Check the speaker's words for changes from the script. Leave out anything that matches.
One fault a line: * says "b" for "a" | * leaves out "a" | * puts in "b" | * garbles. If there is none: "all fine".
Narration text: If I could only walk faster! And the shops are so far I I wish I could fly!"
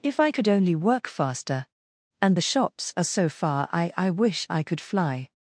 * says "work" for "walk"